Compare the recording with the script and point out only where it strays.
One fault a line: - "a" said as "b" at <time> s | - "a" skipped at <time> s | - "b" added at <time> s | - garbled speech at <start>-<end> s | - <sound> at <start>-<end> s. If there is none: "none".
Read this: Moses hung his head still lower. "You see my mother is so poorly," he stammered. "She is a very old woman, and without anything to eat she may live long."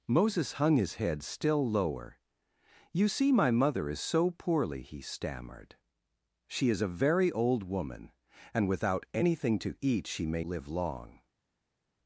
none